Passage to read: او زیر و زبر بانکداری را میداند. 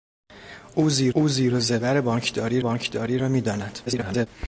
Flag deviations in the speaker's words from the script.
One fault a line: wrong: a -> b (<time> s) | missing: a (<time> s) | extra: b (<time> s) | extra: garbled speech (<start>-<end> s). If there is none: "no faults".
extra: او زیر (1.1 s)
extra: بانکداری (2.6 s)
extra: garbled speech (3.9-4.3 s)